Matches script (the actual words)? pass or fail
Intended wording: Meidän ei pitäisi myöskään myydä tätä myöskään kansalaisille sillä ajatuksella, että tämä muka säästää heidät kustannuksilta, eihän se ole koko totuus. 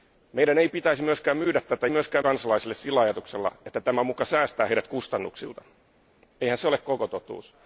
pass